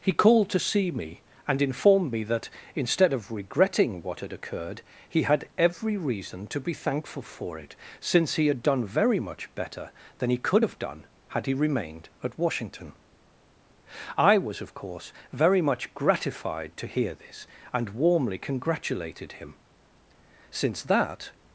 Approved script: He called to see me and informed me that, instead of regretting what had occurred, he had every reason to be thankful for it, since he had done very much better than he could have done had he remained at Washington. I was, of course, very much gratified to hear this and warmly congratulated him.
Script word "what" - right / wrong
right